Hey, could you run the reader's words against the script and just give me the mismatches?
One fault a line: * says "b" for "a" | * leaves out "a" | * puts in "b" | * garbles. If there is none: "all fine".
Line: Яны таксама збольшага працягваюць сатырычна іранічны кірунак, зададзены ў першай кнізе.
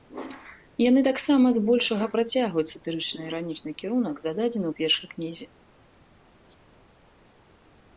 all fine